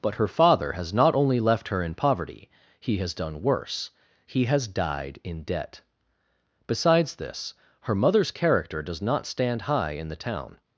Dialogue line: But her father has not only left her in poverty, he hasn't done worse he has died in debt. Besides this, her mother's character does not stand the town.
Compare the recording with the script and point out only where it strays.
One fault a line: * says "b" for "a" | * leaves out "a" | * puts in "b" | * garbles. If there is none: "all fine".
* says "has" for "hasn't"
* puts in "high in"